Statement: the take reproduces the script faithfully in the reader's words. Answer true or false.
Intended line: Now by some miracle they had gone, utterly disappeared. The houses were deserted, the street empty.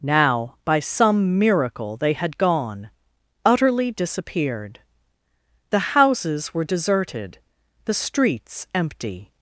false